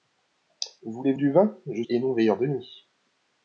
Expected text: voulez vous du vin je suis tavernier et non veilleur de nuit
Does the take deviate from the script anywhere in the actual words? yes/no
yes